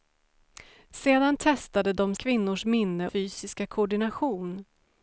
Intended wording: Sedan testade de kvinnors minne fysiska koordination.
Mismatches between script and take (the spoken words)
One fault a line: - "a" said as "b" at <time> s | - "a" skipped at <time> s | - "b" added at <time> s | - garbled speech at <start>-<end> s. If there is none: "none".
none